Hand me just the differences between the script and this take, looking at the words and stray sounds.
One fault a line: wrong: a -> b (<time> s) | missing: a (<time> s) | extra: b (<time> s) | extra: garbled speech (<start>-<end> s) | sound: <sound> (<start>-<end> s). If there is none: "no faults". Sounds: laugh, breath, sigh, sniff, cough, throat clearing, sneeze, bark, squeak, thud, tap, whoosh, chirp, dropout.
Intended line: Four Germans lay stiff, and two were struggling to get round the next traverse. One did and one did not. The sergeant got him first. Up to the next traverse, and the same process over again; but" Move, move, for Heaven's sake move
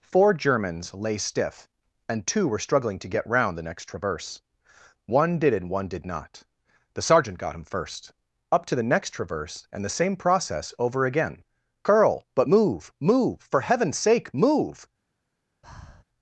extra: curl (11.8 s)
sound: breath (15.6-16.0 s)